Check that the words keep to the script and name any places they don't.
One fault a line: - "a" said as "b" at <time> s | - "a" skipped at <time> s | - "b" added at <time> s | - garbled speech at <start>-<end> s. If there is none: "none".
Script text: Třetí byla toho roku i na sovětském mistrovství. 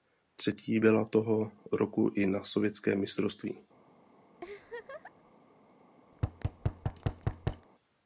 none